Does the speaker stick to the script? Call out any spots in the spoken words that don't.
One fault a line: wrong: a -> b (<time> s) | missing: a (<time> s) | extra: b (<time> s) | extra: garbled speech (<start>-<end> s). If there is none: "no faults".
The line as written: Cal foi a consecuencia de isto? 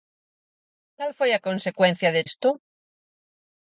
no faults